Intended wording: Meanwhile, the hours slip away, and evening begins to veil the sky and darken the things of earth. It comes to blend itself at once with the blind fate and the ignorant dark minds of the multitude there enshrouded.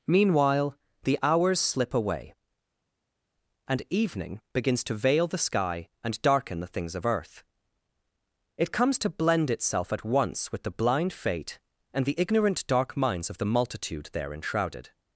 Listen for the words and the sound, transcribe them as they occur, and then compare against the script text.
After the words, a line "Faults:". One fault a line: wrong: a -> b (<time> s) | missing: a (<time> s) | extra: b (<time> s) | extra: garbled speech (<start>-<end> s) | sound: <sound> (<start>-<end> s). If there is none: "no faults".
Meanwhile, the hours slip away, and evening begins to veil the sky and darken the things of earth. It comes to blend itself at once with the blind fate and the ignorant dark minds of the multitude there enshrouded.
Faults:
no faults